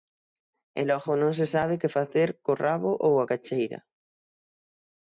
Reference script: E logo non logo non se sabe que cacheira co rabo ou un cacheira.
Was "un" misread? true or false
true